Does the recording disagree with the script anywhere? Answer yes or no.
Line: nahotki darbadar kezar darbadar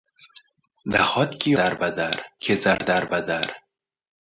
no